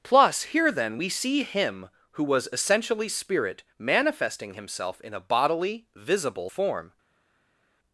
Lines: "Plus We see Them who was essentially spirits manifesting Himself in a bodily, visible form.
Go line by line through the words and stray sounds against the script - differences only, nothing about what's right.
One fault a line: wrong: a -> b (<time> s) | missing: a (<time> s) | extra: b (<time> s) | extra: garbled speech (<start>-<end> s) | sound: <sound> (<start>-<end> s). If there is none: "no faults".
extra: Here then (0.4 s)
wrong: Them -> Him (1.4 s)
wrong: spirits -> spirit (3.1 s)